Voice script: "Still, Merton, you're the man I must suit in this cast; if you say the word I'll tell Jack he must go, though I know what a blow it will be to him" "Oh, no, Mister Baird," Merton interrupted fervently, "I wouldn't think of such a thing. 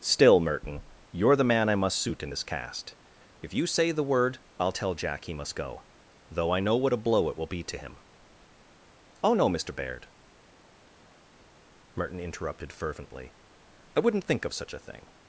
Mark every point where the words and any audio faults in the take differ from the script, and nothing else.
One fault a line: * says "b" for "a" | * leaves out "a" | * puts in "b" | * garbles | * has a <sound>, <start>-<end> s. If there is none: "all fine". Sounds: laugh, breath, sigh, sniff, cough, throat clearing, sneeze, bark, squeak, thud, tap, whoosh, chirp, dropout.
all fine